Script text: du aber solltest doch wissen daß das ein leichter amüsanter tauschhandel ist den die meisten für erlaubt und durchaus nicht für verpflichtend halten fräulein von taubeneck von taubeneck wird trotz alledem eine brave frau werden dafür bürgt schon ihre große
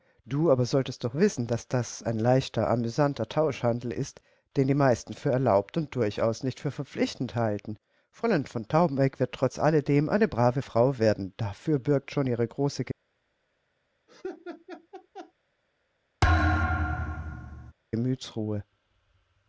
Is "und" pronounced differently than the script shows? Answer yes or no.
no